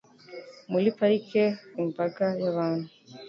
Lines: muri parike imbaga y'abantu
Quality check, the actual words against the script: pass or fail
pass